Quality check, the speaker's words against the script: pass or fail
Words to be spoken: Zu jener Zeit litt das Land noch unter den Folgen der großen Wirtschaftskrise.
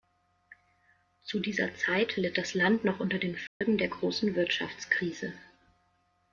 fail